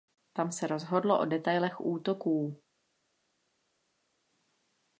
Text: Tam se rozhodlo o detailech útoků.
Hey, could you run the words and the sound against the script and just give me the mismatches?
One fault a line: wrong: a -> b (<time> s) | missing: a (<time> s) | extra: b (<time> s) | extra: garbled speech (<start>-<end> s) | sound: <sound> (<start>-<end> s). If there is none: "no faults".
no faults